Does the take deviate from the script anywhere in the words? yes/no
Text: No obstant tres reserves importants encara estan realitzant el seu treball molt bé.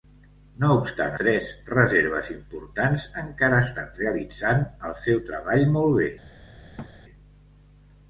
no